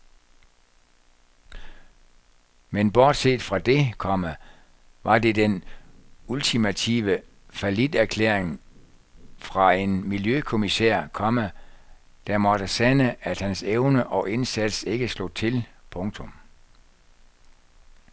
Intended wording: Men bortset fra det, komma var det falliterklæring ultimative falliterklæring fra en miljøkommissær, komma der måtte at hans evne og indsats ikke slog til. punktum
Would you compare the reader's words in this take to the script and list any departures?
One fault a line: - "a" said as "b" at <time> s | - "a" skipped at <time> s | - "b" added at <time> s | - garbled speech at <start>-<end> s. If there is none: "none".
- "falliterklæring" said as "den" at 5.3 s
- "sande" added at 12.7 s